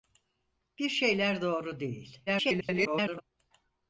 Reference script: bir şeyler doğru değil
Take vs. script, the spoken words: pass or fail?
fail